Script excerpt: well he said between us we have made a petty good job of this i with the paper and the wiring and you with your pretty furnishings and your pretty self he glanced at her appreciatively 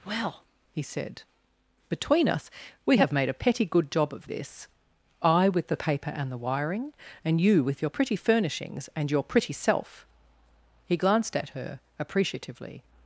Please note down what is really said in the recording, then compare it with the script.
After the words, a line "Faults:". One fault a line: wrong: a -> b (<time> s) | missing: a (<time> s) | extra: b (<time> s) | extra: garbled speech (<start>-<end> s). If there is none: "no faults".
well he said between us we have made a petty good job of this i with the paper and the wiring and you with your pretty furnishings and your pretty self he glanced at her appreciatively
Faults:
no faults